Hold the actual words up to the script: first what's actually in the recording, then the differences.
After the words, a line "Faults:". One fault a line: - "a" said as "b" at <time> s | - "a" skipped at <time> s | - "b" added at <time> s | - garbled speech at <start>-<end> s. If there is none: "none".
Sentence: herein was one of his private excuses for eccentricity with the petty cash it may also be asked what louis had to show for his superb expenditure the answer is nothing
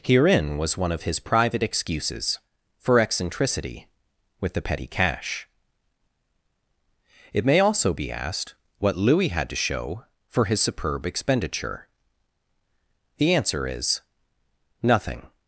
herein was one of his private excuses for eccentricity with the petty cash it may also be asked what louis had to show for his superb expenditure the answer is nothing
Faults:
none